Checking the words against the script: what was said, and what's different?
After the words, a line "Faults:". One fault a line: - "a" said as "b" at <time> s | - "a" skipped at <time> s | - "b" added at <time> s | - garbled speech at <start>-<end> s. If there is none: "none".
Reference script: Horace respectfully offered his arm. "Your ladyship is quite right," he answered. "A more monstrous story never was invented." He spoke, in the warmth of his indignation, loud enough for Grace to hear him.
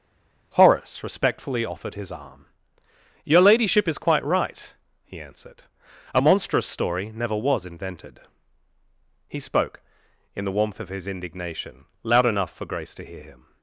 Horace respectfully offered his arm. "Your ladyship is quite right," he answered. "A monstrous story never was invented." He spoke, in the warmth of his indignation, loud enough for Grace to hear him.
Faults:
- "more" skipped at 6.2 s